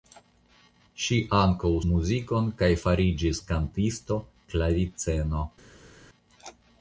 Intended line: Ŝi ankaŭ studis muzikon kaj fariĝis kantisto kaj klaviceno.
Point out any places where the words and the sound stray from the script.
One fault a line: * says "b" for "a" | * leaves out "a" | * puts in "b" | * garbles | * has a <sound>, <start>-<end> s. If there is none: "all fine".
* leaves out "studis"
* leaves out "kaj"